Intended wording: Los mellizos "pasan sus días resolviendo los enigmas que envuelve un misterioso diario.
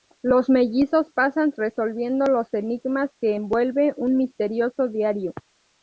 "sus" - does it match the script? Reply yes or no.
no